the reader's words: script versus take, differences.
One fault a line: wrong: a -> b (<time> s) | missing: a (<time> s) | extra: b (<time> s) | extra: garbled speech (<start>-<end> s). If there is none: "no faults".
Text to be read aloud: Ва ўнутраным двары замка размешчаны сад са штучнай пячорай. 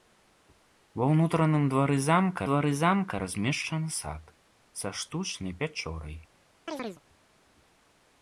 extra: двары замка (2.5 s)